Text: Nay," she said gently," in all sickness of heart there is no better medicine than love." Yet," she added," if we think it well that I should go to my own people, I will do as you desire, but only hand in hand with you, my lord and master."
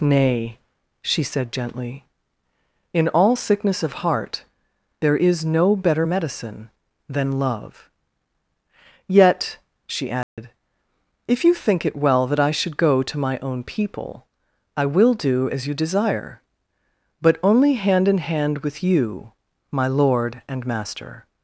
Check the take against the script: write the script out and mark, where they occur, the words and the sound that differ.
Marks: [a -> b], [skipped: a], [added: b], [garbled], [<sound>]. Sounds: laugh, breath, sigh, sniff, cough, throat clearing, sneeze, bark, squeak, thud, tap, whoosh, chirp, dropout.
Nay," she said gently," in all sickness of heart there is no better medicine than love." Yet," she added," [dropout] if [we -> you] think it well that I should go to my own people, I will do as you desire, but only hand in hand with you, my lord and master."